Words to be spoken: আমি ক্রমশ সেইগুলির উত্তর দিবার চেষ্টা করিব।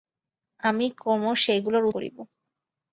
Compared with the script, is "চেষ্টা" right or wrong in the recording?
wrong